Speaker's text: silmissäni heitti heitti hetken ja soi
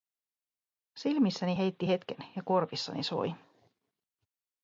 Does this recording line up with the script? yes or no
no